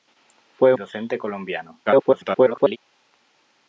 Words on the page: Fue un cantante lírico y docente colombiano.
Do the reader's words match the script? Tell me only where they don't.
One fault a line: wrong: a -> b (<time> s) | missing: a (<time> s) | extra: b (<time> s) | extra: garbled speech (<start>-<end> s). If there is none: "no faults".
missing: un cantante lírico (0.7 s)
extra: garbled speech (1.9-2.8 s)